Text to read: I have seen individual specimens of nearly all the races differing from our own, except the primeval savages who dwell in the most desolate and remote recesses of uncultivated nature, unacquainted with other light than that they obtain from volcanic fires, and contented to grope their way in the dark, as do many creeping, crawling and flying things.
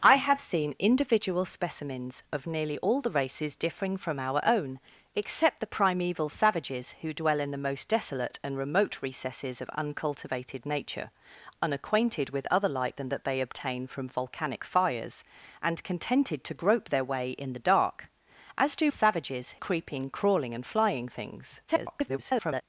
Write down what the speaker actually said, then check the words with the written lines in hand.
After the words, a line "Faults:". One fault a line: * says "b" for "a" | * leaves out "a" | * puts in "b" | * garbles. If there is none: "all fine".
I have seen individual specimens of nearly all the races differing from our own, except the primeval savages who dwell in the most desolate and remote recesses of uncultivated nature, unacquainted with other light than that they obtain from volcanic fires, and contented to grope their way in the dark, as do savages creeping, crawling and flying things. [garbled]
Faults:
* says "savages" for "many"
* garbles